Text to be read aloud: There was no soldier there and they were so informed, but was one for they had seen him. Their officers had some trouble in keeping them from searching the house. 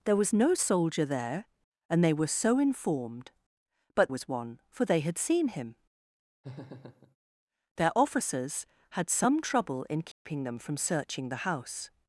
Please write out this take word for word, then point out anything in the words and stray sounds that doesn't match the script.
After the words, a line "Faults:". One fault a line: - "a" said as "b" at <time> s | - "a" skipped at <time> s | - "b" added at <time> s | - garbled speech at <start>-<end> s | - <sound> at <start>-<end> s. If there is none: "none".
There was no soldier there and they were so informed, but was one for they had seen him. Their officers had some trouble in keeping them from searching the house.
Faults:
- laugh at 6.4-7.2 s
- dropout at 10.1-10.3 s